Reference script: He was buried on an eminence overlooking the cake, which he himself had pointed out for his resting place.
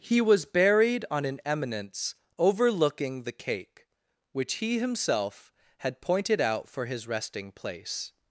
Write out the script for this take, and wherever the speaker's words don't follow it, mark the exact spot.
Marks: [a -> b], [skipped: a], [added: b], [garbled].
He was buried on an eminence overlooking the cake, which he himself had pointed out for his resting place.